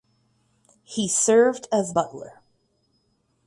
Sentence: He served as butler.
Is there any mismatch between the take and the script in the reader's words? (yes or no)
no